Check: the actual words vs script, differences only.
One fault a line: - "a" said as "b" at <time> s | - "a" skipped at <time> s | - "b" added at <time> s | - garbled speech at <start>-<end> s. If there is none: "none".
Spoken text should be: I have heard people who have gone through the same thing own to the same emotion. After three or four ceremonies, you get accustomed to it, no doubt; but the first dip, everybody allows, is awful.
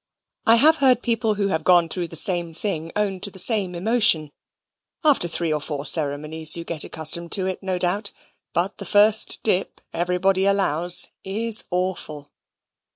none